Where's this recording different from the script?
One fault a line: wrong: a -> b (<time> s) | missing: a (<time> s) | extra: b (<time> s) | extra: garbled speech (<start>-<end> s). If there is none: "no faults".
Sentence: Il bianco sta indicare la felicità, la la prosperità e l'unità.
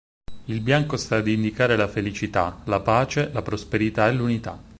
extra: ad (1.2 s)
extra: pace (2.8 s)